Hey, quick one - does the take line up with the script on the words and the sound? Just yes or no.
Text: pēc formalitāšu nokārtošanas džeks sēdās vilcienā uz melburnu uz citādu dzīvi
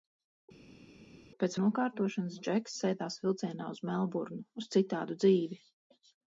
no